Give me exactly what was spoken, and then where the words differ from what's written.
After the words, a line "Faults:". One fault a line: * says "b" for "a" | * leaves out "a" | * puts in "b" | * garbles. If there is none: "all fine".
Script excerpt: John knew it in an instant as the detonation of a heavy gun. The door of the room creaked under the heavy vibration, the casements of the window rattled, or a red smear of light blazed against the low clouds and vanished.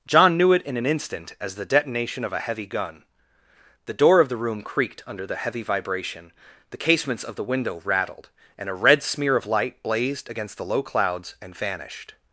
John knew it in an instant as the detonation of a heavy gun. The door of the room creaked under the heavy vibration, the casements of the window rattled, and a red smear of light blazed against the low clouds and vanished.
Faults:
* says "and" for "or"